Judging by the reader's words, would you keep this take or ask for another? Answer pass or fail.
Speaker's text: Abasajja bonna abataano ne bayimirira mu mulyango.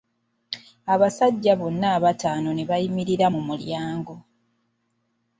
pass